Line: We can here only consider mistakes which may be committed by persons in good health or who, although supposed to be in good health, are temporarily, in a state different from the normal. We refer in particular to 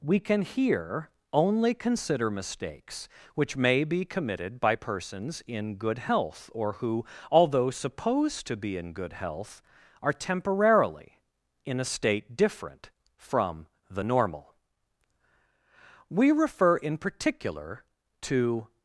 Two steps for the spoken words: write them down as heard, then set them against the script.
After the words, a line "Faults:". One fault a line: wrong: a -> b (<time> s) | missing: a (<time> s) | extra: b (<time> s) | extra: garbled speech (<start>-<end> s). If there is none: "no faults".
We can here only consider mistakes which may be committed by persons in good health or who, although supposed to be in good health, are temporarily, in a state different from the normal. We refer in particular to
Faults:
no faults